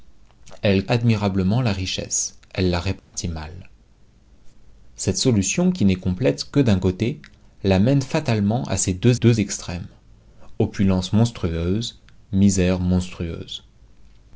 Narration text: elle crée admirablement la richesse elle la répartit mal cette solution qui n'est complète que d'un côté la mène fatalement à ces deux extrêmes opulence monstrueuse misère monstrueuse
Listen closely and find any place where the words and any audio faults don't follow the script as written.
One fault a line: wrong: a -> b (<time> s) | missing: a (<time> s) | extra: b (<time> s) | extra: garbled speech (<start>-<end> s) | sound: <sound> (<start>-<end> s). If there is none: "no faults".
missing: crée (0.9 s)
sound: dropout (3.0-3.1 s)
extra: deux (9.1 s)